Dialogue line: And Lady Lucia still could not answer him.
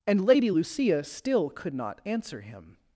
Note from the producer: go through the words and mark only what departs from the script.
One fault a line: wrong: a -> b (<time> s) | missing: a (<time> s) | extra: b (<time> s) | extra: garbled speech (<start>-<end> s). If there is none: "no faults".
no faults